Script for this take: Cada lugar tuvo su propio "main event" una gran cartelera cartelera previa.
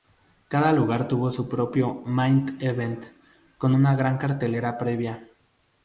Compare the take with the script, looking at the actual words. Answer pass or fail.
fail